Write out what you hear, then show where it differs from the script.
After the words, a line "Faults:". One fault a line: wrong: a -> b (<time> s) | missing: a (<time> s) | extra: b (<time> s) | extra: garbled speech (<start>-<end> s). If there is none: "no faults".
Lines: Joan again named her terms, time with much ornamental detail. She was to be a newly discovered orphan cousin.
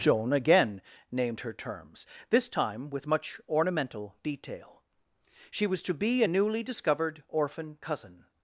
Joan again named her terms, this time with much ornamental detail. She was to be a newly discovered orphan cousin.
Faults:
extra: this (2.3 s)